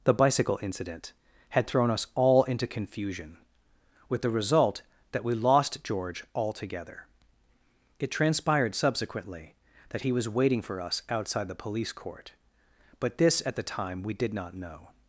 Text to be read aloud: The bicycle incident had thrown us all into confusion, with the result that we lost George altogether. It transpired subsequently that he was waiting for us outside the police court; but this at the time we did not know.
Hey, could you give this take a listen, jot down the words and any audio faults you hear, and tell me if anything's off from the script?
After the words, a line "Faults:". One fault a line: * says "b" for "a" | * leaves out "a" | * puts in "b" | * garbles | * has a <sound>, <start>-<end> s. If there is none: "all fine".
The bicycle incident had thrown us all into confusion, with the result that we lost George altogether. It transpired subsequently that he was waiting for us outside the police court; but this at the time we did not know.
Faults:
all fine